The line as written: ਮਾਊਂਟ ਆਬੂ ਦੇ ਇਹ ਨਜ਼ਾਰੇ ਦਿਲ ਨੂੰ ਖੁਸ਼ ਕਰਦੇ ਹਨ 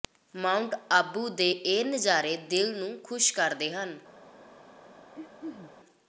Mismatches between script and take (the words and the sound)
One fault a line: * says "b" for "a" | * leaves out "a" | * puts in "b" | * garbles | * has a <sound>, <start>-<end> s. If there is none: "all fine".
* has a throat clearing, 5.2-5.7 s